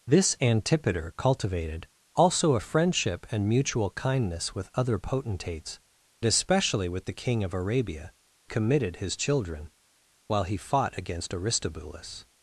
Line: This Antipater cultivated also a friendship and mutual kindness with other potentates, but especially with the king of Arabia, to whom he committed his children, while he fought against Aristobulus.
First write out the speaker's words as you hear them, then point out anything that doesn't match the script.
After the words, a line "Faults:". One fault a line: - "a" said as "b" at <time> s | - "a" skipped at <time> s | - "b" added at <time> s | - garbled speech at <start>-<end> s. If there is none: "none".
This Antipater cultivated also a friendship and mutual kindness with other potentates, especially with the king of Arabia, committed his children, while he fought against Aristobulus.
Faults:
- "but" skipped at 5.8 s
- "to whom he" skipped at 8.1 s